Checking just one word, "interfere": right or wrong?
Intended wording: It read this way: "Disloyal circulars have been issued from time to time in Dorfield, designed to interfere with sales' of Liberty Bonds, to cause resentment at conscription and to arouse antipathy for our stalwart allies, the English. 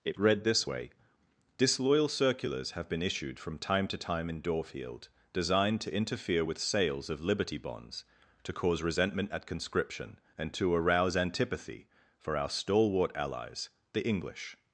right